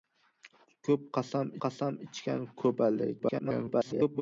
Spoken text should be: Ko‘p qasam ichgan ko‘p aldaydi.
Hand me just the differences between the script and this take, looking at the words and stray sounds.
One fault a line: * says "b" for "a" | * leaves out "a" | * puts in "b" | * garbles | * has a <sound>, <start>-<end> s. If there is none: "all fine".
* puts in "qasam"
* garbles